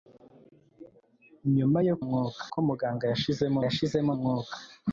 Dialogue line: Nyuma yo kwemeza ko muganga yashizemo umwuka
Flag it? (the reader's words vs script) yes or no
yes